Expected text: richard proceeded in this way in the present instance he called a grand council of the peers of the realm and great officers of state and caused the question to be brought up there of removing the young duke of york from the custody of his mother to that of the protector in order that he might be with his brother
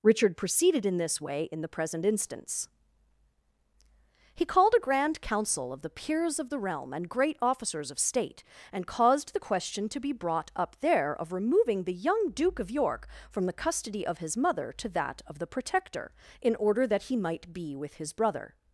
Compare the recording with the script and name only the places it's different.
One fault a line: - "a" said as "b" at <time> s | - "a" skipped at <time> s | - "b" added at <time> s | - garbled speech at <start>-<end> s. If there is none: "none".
none